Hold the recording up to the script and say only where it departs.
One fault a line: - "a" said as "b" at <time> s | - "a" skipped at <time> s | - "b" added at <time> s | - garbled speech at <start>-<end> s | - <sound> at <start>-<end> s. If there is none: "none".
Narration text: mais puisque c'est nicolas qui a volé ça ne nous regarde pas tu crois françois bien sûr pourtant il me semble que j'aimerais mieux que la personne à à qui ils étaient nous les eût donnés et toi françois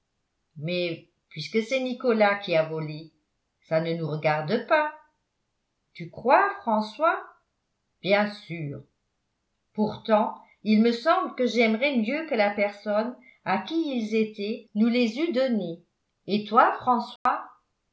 - "à" skipped at 13.6 s
- dropout at 17.2-17.3 s